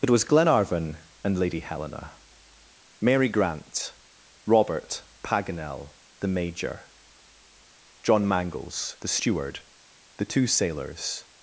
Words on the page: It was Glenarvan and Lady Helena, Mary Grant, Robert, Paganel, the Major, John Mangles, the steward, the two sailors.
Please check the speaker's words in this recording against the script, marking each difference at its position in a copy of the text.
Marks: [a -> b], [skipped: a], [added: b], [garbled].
It was Glenarvan and Lady Helena, Mary Grant, Robert, Paganel, the Major, John Mangles, the steward, the two sailors.